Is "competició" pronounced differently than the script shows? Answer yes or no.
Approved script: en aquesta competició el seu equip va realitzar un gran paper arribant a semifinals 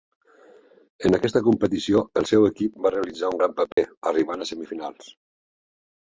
no